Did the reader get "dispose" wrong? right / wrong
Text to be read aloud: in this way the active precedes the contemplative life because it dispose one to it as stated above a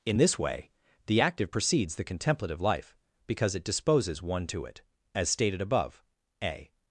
wrong